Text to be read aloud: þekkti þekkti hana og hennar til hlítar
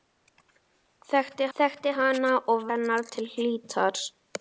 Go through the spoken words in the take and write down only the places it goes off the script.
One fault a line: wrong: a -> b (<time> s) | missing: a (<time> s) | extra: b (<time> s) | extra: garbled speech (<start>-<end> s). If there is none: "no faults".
no faults